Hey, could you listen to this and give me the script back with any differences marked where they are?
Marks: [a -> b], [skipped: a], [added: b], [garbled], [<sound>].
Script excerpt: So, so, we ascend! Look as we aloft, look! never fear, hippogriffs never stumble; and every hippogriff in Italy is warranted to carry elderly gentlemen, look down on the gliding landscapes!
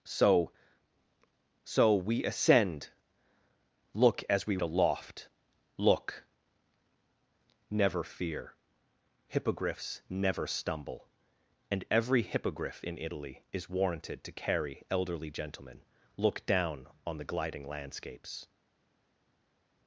So, so, we ascend! Look as we aloft, look! never fear, hippogriffs never stumble; and every hippogriff in Italy is warranted to carry elderly gentlemen, look down on the gliding landscapes!